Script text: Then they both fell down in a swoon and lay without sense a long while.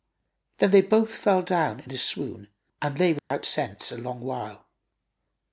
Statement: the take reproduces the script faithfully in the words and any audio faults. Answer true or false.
false